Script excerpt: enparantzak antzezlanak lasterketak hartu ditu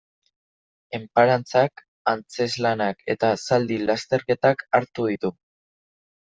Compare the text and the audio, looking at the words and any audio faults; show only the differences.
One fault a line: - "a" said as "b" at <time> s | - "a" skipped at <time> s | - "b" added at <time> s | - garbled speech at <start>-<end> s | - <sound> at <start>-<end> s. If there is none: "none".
- "eta zaldi" added at 3.2 s